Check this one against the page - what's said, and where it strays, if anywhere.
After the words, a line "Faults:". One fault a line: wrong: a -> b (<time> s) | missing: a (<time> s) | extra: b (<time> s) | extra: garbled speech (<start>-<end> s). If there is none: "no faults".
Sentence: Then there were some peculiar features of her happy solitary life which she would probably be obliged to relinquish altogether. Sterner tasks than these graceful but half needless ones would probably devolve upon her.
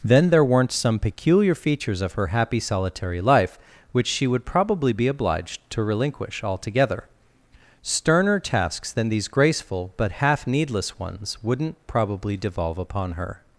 Then there weren't some peculiar features of her happy solitary life which she would probably be obliged to relinquish altogether. Sterner tasks than these graceful but half needless ones wouldn't probably devolve upon her.
Faults:
wrong: were -> weren't (0.4 s)
wrong: would -> wouldn't (11.4 s)